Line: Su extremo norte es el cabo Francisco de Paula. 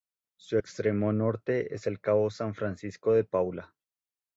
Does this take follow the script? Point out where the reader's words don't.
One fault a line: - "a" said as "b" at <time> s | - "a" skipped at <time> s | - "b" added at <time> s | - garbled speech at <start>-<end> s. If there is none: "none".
- "San" added at 2.3 s